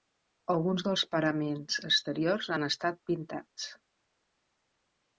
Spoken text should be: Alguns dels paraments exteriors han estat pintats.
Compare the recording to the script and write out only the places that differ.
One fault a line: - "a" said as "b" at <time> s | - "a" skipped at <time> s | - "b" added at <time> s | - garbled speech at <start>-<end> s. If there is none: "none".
none